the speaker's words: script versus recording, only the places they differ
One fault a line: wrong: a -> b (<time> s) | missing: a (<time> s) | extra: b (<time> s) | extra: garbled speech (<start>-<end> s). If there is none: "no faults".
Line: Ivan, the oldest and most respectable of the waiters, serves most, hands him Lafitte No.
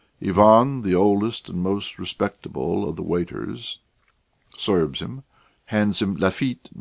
wrong: most -> him (5.0 s)